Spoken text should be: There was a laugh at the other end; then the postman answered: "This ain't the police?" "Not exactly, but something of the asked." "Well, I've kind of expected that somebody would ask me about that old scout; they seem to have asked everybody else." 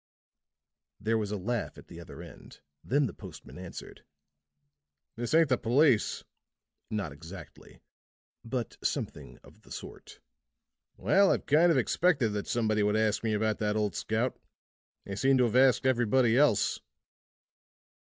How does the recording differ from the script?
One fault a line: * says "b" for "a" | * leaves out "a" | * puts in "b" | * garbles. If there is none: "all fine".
* says "sort" for "asked"